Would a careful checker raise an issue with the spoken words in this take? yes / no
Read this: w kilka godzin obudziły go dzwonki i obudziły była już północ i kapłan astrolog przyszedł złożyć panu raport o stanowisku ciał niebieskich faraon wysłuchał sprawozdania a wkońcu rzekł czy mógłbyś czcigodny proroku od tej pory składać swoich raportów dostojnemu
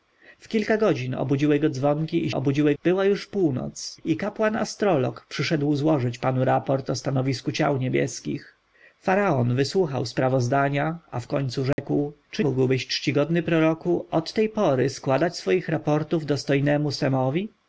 no